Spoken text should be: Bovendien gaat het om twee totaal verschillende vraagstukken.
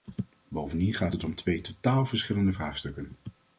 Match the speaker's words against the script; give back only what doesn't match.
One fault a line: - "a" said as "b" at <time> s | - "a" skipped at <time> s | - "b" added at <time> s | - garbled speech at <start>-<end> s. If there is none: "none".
none